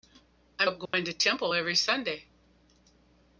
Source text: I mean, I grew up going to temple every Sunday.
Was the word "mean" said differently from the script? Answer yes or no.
yes